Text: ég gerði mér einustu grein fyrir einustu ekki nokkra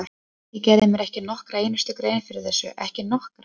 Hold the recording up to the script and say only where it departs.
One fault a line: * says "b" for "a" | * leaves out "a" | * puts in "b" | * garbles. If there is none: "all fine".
* puts in "ekki nokkra"
* says "þessu" for "einustu"